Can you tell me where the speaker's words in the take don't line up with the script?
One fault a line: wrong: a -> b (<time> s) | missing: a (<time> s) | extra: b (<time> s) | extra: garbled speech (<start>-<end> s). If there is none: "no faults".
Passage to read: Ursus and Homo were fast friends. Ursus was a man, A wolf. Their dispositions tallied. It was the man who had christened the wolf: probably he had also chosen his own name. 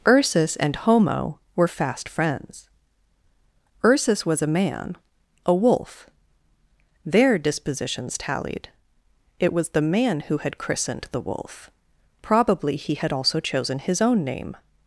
no faults